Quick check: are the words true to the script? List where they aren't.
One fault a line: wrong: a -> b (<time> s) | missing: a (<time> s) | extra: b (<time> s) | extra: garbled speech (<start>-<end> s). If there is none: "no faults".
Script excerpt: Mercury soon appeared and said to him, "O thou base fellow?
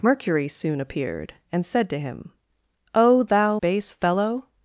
no faults